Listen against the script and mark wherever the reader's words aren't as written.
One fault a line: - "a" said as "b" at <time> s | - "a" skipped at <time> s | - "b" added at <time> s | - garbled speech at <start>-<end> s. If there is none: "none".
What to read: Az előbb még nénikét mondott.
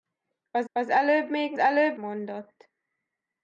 - "az" added at 0.7 s
- "nénikét" said as "előbb" at 1.6 s